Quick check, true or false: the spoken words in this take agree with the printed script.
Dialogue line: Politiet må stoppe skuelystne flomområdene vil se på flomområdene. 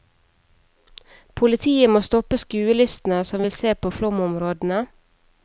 false